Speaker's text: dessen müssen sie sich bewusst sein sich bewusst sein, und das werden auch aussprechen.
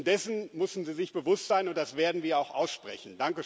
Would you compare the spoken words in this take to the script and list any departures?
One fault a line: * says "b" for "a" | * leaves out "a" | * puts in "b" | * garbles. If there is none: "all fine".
* leaves out "sich bewusst sein"
* puts in "wir"